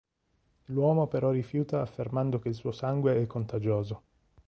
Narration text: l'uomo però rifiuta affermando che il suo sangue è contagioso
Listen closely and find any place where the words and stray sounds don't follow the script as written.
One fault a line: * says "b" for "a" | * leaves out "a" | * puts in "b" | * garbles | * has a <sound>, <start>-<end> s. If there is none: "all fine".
all fine